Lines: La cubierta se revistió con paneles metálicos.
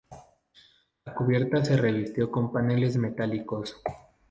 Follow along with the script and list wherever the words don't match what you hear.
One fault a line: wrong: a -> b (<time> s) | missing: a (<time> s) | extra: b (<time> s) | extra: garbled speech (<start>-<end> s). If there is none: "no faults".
no faults